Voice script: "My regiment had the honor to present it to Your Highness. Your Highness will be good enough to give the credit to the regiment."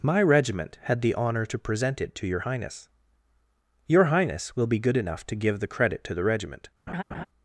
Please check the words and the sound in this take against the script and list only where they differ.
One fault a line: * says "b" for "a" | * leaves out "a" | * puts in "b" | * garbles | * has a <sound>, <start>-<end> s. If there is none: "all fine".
* has a laugh, 6.9-7.3 s